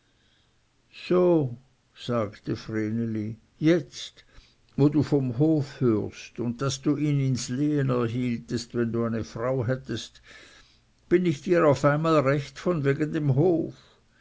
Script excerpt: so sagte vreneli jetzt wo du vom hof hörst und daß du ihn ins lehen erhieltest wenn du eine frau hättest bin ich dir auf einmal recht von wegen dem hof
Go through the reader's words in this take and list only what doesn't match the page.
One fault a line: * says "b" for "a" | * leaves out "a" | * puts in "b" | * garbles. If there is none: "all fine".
all fine